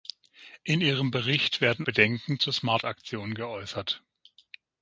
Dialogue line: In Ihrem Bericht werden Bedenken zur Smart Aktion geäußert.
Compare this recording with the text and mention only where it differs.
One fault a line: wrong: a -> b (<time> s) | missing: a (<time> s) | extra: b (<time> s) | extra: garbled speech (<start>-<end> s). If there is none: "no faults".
no faults